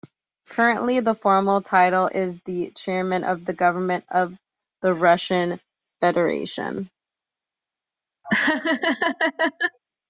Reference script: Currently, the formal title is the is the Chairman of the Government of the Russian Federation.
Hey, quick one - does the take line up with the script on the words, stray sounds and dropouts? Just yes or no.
no